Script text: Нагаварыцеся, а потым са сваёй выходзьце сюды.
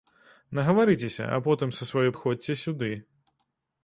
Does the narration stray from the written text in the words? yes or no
no